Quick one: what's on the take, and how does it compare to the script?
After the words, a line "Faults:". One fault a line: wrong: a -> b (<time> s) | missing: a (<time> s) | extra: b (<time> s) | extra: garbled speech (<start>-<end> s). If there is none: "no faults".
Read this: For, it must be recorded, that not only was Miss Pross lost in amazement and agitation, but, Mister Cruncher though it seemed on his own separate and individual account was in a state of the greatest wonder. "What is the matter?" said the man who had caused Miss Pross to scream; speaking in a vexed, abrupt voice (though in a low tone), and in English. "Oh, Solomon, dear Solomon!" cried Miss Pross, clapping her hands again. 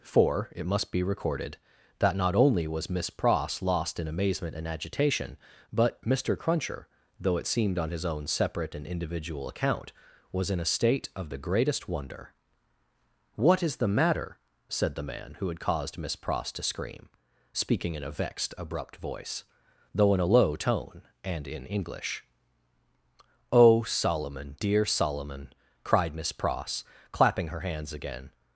For, it must be recorded, that not only was Miss Pross lost in amazement and agitation, but, Mister Cruncher though it seemed on his own separate and individual account was in a state of the greatest wonder. "What is the matter?" said the man who had caused Miss Pross to scream; speaking in a vexed, abrupt voice (though in a low tone), and in English. "Oh, Solomon, dear Solomon!" cried Miss Pross, clapping her hands again.
Faults:
no faults